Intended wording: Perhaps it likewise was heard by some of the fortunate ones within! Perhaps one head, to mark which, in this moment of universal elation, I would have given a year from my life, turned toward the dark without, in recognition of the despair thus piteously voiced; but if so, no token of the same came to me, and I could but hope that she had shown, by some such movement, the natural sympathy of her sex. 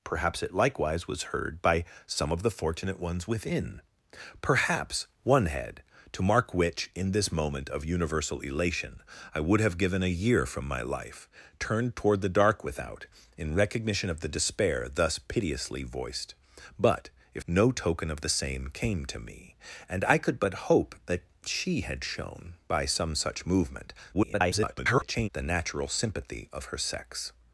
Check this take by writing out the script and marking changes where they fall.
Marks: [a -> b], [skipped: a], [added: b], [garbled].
Perhaps it likewise was heard by some of the fortunate ones within! Perhaps one head, to mark which, in this moment of universal elation, I would have given a year from my life, turned toward the dark without, in recognition of the despair thus piteously voiced; but if [skipped: so,] no token of the same came to me, and I could but hope that she had shown, by some such movement, [garbled] the natural sympathy of her sex.